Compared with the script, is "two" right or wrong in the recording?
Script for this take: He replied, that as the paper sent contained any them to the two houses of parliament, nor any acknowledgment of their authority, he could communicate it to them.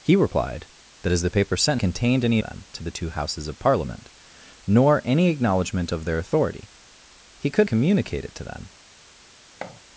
right